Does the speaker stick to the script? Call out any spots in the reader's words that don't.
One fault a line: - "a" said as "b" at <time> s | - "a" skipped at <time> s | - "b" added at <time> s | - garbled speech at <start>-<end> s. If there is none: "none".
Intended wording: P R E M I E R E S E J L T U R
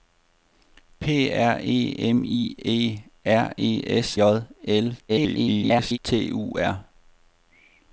- "E" skipped at 4.2 s
- garbled speech at 5.1-6.0 s